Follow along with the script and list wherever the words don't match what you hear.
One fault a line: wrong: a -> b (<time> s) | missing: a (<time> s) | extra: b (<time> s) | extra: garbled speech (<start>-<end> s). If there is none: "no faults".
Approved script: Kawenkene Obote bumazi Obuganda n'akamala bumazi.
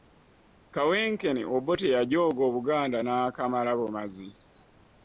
wrong: bumazi -> yajooga (1.9 s)